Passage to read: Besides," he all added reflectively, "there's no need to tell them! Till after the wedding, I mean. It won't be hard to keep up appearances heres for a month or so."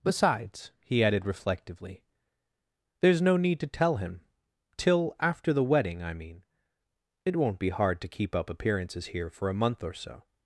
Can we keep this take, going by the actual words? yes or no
no